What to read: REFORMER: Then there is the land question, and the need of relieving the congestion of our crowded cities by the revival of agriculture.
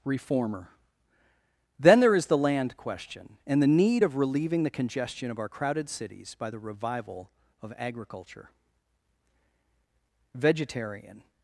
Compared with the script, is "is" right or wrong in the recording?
right